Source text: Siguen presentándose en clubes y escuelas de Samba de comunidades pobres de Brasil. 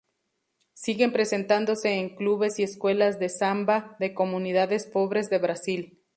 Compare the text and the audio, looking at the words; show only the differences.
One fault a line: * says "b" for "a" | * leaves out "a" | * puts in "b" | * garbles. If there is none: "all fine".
all fine